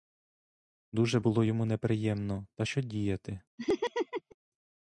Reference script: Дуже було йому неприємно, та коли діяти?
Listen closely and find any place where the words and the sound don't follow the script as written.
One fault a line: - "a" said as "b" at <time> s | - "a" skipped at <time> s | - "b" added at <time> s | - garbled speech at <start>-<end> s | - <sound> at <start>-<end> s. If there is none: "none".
- "коли" said as "що" at 2.6 s
- laugh at 3.6-4.4 s